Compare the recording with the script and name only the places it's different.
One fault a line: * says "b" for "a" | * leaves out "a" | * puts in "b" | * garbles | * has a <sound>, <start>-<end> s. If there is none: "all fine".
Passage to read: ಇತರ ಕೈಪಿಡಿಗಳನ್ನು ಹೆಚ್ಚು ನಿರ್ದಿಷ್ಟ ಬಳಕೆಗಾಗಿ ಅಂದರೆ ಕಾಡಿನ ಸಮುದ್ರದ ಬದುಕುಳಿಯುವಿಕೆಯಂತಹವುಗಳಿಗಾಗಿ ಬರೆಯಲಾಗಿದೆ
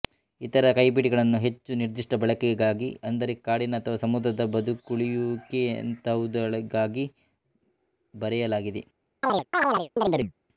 * puts in "ಅಥವಾ"
* has a chirp, 9.2-10.3 s